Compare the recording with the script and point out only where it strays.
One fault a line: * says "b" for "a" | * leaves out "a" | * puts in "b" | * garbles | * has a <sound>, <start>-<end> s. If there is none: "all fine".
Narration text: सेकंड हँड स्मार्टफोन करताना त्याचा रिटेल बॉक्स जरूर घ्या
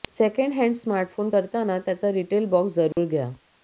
* has a dropout, 2.9-3.0 s